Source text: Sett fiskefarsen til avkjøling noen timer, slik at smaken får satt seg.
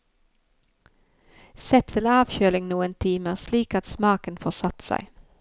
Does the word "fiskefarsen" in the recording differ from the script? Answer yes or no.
yes